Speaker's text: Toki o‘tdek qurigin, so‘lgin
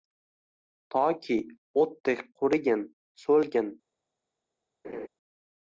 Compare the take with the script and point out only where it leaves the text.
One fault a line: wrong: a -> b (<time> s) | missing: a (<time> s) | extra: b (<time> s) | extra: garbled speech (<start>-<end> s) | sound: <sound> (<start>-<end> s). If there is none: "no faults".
sound: laugh (4.8-5.1 s)